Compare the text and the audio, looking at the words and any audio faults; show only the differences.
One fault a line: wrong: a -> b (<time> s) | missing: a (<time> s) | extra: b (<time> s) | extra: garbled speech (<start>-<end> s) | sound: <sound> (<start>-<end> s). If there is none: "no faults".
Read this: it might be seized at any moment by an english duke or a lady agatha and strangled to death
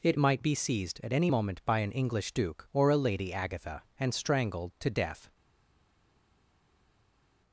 no faults